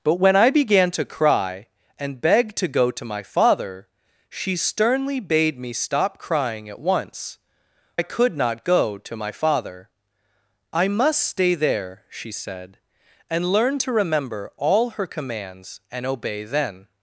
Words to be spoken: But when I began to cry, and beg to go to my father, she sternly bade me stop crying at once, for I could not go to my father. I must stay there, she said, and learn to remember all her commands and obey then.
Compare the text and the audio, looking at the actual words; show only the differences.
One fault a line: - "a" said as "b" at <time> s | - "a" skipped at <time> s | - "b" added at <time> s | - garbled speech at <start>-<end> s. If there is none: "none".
- "for" skipped at 7.4 s